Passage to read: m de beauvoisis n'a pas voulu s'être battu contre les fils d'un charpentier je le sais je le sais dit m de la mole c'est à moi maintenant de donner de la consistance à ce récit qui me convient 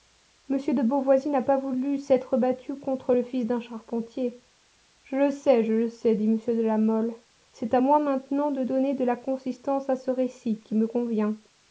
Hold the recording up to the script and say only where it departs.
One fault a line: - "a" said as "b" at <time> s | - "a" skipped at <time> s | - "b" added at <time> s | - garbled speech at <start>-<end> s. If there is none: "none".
- "les" said as "le" at 3.1 s